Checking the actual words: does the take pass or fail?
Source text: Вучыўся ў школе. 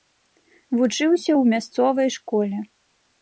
fail